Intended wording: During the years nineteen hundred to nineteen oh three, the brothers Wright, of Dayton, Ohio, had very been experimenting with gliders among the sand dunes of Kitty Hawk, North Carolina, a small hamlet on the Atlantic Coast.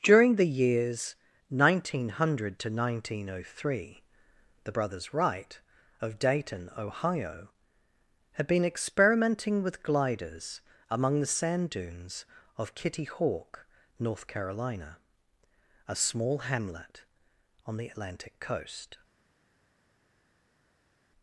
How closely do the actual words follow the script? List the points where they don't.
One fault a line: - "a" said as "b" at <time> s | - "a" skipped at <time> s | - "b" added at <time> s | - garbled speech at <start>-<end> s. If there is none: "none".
- "very" skipped at 8.5 s